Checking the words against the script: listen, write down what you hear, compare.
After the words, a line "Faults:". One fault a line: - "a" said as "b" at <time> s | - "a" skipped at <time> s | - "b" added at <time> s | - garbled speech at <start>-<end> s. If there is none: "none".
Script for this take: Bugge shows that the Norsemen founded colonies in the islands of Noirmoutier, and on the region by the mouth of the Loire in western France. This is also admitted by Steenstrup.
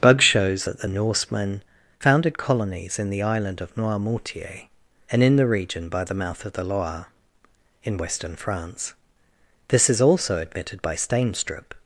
Bugge shows that the Norsemen founded colonies in the island of Noirmoutier, and in the region by the mouth of the Loire in western France. This is also admitted by Steenstrup.
Faults:
- "islands" said as "island" at 3.2 s
- "on" said as "in" at 5.2 s